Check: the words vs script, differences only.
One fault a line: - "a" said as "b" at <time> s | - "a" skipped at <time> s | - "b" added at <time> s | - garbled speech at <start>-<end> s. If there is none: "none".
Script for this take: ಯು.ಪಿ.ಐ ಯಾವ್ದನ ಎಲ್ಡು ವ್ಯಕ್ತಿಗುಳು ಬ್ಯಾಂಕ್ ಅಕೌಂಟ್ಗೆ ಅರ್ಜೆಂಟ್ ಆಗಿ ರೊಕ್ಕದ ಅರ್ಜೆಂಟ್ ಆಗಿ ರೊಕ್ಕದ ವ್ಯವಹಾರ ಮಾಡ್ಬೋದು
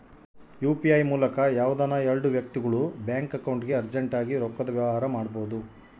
- "ಮೂಲಕ" added at 1.1 s
- "ಅರ್ಜೆಂಟ್ ಆಗಿ ರೊಕ್ಕದ" skipped at 4.7 s